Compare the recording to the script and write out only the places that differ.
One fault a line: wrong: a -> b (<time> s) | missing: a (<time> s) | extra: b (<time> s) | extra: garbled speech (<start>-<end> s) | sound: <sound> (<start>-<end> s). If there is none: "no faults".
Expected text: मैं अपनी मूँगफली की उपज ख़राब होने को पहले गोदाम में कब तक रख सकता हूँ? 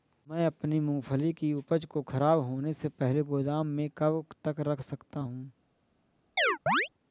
extra: को (1.9 s)
wrong: को -> से (2.7 s)
sound: chirp (6.4-6.9 s)